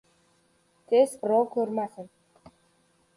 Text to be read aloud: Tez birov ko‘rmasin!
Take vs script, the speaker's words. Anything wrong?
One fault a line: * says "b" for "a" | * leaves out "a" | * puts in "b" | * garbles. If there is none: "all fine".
all fine